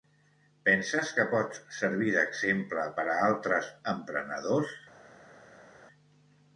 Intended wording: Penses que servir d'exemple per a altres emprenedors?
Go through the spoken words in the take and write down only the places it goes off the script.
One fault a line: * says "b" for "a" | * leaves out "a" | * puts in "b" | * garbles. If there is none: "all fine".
* puts in "pots"